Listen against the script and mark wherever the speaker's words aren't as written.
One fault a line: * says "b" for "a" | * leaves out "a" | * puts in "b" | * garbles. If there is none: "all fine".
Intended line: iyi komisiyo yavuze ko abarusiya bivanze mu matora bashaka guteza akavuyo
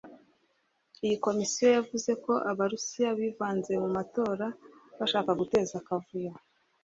all fine